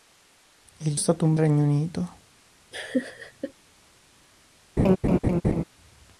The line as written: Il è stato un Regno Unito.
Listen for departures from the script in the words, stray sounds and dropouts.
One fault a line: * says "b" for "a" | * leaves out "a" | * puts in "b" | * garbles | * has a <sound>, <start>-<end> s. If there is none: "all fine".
* has a laugh, 2.7-3.5 s
* has a laugh, 4.8-5.6 s